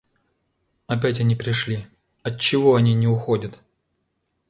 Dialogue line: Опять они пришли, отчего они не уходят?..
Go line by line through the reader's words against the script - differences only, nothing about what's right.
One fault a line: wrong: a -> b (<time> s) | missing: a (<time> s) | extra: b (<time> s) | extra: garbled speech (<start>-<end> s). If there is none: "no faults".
no faults